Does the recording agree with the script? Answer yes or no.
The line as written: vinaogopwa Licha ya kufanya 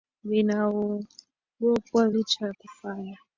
yes